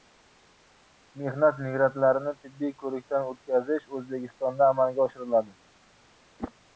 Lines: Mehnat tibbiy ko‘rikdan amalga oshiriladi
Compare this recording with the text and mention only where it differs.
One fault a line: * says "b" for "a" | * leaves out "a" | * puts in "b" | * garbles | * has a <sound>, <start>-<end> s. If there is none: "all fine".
* puts in "migrantlarini"
* puts in "o‘tkazish O‘zbekistonda"
* has a whoosh, 6.4-6.5 s